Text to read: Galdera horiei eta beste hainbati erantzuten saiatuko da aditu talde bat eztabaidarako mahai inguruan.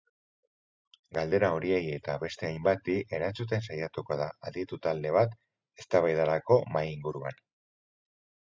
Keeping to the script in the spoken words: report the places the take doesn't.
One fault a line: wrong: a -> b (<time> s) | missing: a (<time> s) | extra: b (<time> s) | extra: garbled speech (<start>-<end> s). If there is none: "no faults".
no faults